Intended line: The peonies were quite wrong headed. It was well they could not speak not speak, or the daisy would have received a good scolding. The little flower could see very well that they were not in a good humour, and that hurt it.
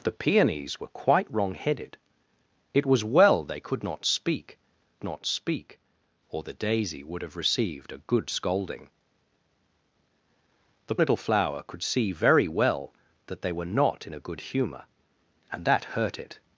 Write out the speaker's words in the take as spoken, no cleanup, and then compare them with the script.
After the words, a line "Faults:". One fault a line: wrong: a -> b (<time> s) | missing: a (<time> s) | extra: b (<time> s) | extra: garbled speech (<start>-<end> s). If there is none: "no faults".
The peonies were quite wrong headed. It was well they could not speak not speak, or the daisy would have received a good scolding. The little flower could see very well that they were not in a good humour, and that hurt it.
Faults:
no faults